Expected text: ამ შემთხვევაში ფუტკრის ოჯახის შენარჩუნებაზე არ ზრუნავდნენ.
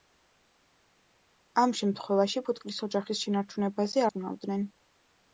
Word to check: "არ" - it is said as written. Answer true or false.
false